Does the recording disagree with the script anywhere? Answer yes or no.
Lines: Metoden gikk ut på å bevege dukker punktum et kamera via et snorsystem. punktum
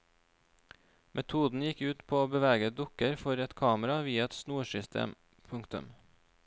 yes